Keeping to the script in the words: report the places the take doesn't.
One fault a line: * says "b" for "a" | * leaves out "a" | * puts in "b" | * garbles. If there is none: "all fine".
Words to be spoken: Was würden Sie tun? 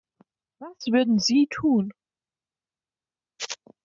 all fine